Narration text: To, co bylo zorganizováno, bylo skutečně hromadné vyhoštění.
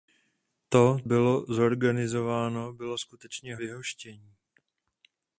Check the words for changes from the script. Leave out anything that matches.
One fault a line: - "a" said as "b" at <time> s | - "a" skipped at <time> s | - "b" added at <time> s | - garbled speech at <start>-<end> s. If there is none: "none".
- "co" skipped at 1.0 s
- "hromadné" skipped at 3.6 s